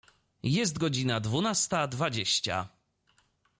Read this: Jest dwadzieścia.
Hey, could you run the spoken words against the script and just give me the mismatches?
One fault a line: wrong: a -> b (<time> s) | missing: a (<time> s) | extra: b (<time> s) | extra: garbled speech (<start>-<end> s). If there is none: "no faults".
extra: godzina dwunasta (0.8 s)